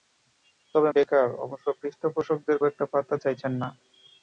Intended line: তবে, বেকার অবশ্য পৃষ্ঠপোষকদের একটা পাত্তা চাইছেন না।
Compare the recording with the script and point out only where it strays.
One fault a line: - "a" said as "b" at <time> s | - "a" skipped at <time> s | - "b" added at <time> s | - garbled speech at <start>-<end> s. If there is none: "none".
none